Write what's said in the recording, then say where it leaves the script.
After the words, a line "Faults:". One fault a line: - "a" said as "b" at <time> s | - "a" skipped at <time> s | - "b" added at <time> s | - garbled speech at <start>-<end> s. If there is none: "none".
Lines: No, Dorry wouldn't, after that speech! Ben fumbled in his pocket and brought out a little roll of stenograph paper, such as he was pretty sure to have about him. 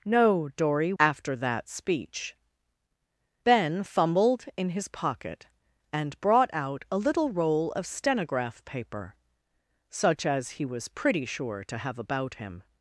No, Dorry after that speech! Ben fumbled in his pocket and brought out a little roll of stenograph paper, such as he was pretty sure to have about him.
Faults:
- "wouldn't" skipped at 0.9 s